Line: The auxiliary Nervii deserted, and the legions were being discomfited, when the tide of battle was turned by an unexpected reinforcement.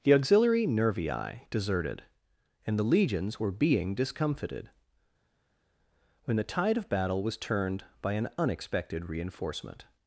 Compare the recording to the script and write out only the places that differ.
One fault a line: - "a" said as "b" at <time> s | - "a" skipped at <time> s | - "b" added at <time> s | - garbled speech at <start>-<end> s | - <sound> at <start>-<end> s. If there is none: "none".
none